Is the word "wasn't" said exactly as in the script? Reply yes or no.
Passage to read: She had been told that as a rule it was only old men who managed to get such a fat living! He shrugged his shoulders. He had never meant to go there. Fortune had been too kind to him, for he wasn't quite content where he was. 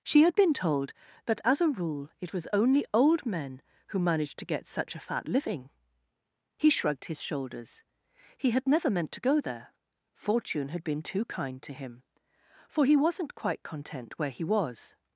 yes